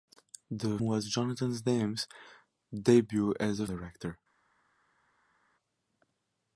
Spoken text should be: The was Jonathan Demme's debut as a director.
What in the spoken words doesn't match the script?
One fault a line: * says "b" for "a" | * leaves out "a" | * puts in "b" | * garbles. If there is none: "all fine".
all fine